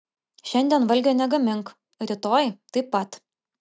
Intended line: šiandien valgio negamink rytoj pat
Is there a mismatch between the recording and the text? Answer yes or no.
yes